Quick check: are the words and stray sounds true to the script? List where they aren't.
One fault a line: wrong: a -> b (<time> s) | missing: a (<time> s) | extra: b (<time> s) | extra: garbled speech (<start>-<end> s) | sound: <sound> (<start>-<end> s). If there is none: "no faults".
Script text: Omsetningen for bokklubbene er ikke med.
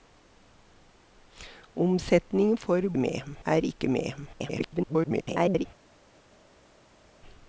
wrong: bokklubbene -> med (3.0 s)
extra: garbled speech (4.3-5.7 s)